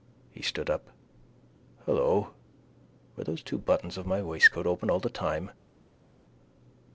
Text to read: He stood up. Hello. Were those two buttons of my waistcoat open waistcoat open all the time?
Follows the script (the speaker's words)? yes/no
no